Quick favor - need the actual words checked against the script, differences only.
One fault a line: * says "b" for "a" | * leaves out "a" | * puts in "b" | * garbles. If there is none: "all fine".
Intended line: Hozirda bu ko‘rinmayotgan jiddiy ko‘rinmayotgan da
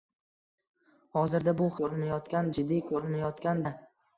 all fine